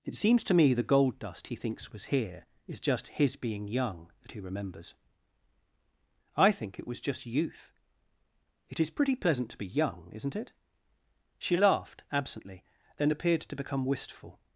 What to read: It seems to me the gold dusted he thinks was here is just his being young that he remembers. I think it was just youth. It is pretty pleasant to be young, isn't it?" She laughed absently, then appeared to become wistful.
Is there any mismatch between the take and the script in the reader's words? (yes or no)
yes